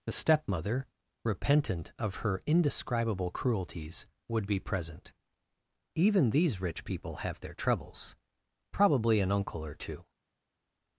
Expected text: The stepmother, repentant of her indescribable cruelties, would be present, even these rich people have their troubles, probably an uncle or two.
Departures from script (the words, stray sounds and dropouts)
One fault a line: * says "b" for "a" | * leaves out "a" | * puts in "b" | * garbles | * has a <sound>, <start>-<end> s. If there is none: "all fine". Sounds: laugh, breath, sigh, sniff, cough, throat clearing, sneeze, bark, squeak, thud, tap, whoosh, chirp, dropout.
all fine